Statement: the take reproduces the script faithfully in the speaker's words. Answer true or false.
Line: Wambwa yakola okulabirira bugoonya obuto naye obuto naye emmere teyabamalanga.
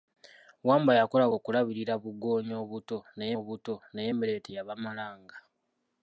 true